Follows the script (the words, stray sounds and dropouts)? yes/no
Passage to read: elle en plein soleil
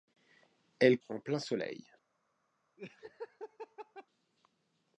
no